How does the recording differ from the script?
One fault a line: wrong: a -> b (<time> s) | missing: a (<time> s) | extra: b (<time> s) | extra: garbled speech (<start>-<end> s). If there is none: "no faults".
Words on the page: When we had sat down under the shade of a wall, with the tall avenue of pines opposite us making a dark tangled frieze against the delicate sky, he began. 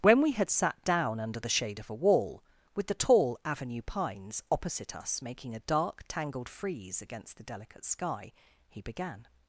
missing: of (3.8 s)